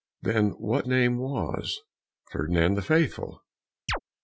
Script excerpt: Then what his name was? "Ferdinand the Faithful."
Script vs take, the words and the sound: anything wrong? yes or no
yes